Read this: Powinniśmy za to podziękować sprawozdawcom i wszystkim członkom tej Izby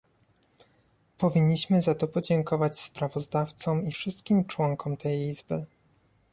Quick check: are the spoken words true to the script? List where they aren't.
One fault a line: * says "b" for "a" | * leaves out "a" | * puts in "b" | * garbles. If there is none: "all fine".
all fine